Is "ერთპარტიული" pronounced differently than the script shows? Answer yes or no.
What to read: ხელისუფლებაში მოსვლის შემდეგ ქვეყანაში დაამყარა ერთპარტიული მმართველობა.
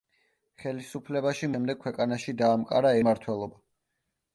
yes